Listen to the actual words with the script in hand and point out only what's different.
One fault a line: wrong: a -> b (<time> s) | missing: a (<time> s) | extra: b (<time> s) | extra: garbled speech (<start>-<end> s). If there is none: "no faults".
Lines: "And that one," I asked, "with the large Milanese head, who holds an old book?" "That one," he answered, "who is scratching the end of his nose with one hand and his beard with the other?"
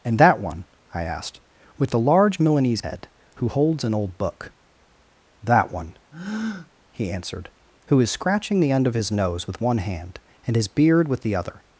no faults